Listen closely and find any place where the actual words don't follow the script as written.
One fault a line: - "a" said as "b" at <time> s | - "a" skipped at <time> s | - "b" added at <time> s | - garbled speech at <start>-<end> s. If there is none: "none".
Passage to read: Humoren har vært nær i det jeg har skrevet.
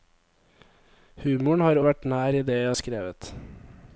none